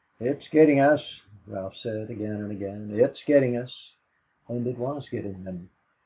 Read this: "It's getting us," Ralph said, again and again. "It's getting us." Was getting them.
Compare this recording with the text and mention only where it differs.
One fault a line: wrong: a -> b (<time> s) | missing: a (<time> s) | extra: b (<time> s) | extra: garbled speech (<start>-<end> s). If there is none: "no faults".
extra: And it (4.5 s)